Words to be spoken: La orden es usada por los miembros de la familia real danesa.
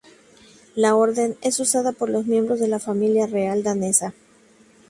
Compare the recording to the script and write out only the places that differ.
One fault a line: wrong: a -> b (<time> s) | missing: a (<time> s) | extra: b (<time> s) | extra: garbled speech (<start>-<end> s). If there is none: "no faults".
no faults